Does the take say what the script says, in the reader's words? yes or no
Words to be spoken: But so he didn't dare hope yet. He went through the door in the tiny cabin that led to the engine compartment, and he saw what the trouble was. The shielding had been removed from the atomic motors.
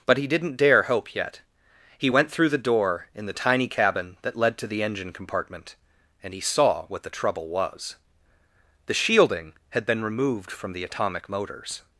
no